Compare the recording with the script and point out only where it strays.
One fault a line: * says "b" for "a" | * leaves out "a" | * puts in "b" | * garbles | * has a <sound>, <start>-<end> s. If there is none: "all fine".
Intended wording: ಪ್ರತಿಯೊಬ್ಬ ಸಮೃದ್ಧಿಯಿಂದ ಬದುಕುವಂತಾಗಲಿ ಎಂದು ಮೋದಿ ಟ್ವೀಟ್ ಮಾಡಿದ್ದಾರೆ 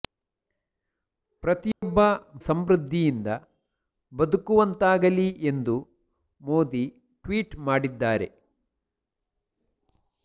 * has a dropout, 1.7-1.8 s